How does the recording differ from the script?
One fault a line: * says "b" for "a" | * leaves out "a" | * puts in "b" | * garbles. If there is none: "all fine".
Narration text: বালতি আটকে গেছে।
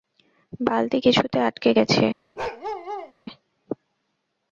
* puts in "কিছুতে"